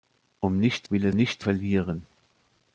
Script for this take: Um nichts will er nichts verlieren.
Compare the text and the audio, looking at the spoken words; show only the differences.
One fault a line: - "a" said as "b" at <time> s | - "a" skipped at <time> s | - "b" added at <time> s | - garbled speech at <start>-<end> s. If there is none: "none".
none